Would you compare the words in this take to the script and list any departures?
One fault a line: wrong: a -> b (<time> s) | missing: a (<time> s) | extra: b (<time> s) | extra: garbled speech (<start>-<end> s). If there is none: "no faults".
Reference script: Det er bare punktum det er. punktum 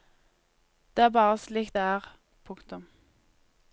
wrong: punktum -> slik (1.4 s)